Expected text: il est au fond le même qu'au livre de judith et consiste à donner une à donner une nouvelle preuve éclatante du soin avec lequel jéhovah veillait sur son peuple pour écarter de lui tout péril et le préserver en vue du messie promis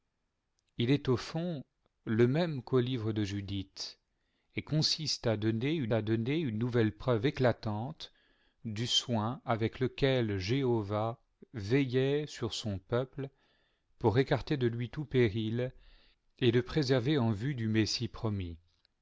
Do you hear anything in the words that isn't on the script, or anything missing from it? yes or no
no